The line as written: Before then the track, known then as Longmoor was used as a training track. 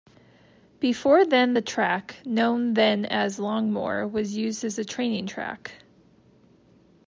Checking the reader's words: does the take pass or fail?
pass